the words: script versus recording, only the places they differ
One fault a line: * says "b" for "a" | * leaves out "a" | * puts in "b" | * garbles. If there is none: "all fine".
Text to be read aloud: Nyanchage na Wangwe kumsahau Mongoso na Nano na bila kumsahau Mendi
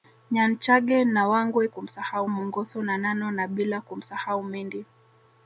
all fine